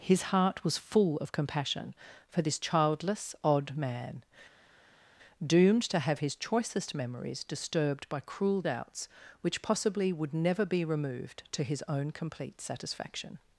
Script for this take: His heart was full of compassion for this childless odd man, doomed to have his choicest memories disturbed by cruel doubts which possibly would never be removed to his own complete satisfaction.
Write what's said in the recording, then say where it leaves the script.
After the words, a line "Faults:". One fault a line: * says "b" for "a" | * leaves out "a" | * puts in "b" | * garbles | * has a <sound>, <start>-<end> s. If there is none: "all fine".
His heart was full of compassion for this childless odd man, doomed to have his choicest memories disturbed by cruel doubts which possibly would never be removed to his own complete satisfaction.
Faults:
all fine